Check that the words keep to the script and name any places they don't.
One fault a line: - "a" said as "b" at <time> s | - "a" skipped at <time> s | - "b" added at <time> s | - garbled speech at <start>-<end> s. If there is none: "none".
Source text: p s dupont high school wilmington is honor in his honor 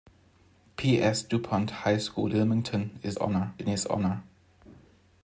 none